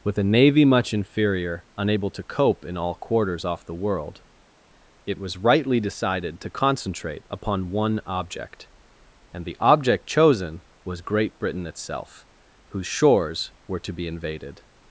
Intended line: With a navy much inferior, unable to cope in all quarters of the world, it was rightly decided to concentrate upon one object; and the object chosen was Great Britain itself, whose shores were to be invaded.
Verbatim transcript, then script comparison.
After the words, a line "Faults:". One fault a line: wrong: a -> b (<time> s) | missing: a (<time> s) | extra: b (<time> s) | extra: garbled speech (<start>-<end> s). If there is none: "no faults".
With a navy much inferior, unable to cope in all quarters off the world, it was rightly decided to concentrate upon one object; and the object chosen was Great Britain itself, whose shores were to be invaded.
Faults:
wrong: of -> off (3.5 s)